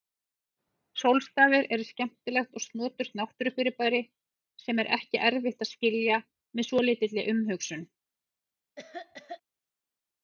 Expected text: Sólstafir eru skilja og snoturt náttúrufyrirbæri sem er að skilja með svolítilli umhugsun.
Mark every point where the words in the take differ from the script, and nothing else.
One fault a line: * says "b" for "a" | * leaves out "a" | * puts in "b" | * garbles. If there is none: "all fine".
* says "skemmtilegt" for "skilja"
* puts in "ekki erfitt"